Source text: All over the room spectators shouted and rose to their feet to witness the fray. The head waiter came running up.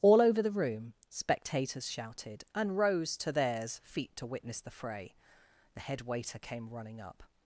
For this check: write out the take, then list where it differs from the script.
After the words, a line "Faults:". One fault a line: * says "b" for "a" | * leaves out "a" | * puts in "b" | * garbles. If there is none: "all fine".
All over the room spectators shouted and rose to theirs feet to witness the fray. The head waiter came running up.
Faults:
* says "theirs" for "their"